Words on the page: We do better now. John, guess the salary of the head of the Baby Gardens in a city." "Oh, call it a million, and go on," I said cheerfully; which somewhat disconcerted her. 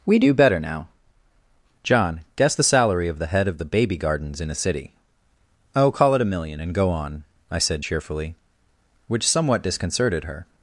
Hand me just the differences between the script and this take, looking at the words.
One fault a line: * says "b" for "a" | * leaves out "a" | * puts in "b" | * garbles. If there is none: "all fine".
all fine